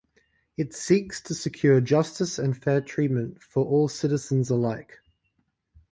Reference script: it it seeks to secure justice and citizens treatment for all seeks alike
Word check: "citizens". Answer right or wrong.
wrong